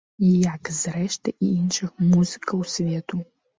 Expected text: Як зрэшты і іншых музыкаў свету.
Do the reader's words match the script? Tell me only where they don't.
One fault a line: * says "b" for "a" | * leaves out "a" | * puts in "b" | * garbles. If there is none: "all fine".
all fine